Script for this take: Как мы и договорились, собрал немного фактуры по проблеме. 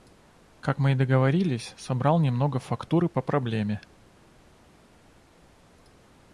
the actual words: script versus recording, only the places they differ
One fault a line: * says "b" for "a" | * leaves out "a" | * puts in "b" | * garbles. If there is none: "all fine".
all fine